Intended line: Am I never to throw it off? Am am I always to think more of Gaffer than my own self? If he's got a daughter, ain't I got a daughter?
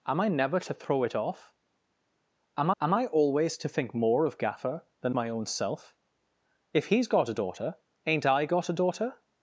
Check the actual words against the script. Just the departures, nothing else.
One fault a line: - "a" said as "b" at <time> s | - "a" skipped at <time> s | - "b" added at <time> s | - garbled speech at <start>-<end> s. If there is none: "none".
none